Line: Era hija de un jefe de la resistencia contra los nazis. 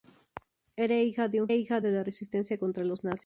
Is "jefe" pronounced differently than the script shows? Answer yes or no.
yes